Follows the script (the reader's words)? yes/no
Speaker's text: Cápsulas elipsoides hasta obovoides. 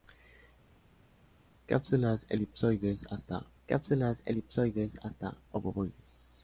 no